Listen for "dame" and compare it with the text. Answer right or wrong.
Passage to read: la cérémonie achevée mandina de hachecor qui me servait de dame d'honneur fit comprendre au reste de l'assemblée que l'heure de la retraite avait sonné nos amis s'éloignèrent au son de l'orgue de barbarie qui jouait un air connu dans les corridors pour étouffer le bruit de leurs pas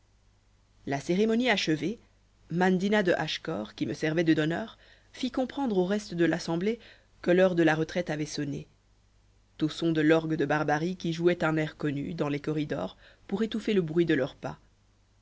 wrong